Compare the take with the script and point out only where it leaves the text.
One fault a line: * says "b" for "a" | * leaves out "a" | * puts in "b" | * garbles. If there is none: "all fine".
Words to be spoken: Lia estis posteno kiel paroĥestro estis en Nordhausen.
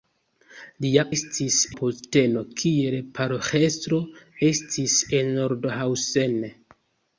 all fine